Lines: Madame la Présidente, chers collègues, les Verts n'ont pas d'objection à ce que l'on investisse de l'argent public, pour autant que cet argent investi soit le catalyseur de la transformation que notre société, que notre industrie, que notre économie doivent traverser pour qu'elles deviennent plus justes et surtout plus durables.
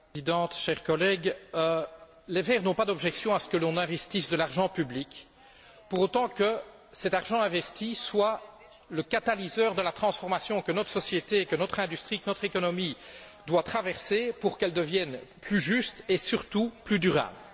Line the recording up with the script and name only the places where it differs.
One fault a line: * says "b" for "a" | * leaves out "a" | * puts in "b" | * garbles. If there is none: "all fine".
all fine